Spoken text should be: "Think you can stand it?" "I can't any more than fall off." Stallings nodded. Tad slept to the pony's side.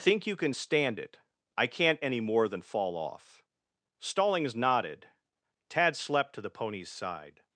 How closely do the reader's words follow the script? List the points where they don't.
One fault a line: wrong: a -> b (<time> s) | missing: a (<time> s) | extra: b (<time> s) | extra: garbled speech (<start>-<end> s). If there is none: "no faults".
no faults